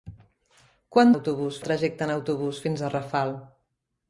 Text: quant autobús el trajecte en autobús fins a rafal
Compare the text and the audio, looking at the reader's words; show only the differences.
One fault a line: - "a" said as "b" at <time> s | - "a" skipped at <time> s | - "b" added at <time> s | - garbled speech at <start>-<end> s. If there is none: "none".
none